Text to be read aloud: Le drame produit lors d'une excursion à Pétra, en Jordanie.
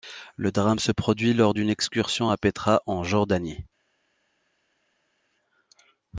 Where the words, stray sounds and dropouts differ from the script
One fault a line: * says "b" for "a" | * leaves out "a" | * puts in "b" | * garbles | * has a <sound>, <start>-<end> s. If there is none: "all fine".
* puts in "se"